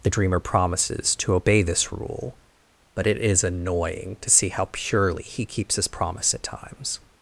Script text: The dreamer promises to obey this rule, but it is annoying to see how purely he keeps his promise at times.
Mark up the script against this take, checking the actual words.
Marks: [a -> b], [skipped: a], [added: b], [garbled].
The dreamer promises to obey this rule, but it is annoying to see how purely he keeps his promise at times.